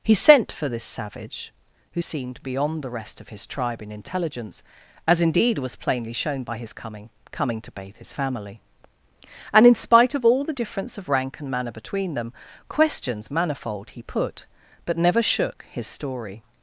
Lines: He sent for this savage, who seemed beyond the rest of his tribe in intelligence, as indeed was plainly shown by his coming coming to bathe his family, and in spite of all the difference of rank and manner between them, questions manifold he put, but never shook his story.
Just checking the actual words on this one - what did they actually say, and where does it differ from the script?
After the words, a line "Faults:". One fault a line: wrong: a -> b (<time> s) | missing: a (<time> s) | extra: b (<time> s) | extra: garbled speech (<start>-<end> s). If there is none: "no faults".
He sent for this savage, who seemed beyond the rest of his tribe in intelligence, as indeed was plainly shown by his coming coming to bathe his family, and in spite of all the difference of rank and manner between them, questions manifold he put, but never shook his story.
Faults:
no faults